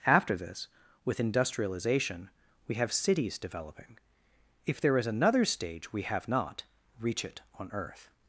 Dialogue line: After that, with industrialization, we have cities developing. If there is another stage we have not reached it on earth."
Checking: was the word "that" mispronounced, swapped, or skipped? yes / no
yes